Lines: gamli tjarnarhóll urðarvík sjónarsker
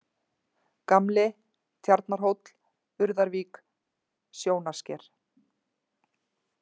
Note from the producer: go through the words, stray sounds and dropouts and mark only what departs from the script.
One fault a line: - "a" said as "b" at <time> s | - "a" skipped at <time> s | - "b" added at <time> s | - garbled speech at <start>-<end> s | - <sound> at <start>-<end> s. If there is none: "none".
none